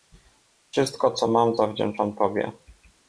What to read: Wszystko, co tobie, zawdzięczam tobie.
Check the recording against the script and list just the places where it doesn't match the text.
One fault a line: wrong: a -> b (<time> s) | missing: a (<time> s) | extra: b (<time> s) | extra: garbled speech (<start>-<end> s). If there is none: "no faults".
wrong: tobie -> mam (1.3 s)